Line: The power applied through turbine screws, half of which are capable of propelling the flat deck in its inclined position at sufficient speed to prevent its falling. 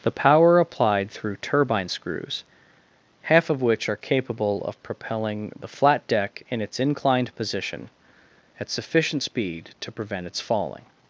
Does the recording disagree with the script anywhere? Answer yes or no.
no